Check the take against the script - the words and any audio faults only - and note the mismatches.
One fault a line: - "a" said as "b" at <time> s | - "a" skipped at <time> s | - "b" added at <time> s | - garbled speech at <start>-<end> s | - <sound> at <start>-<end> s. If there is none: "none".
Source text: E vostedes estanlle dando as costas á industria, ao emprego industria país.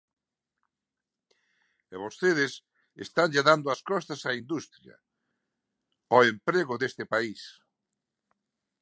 - "industria" said as "deste" at 6.8 s